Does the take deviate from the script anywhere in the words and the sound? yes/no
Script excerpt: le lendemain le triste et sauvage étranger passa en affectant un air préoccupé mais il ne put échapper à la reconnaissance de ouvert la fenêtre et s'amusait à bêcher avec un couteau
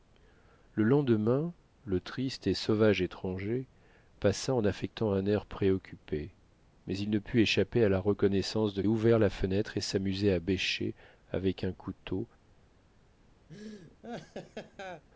yes